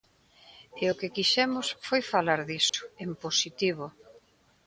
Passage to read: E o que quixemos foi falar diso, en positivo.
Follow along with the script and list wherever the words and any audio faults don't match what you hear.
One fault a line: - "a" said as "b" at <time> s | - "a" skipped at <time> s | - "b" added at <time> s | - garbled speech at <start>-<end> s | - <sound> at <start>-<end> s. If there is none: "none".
- dropout at 2.7-2.7 s